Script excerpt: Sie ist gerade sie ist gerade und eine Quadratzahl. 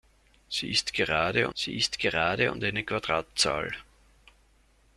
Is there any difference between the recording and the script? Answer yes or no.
no